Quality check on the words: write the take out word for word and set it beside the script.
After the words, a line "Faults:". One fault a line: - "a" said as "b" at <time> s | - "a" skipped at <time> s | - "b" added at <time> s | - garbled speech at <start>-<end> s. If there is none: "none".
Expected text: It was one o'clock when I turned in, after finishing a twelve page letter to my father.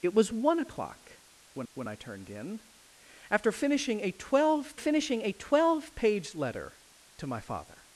It was one o'clock when when I turned in, after finishing a twelve finishing a twelve page letter to my father.
Faults:
- "when" added at 1.7 s
- "finishing a twelve" added at 4.8 s